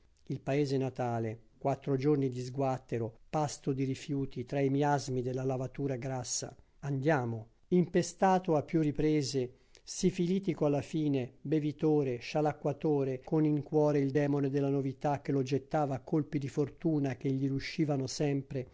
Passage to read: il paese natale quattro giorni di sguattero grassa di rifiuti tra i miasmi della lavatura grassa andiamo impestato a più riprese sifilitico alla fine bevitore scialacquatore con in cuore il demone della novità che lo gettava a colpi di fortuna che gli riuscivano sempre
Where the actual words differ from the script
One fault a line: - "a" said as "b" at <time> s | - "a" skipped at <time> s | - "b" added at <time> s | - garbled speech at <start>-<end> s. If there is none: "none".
- "grassa" said as "pasto" at 3.3 s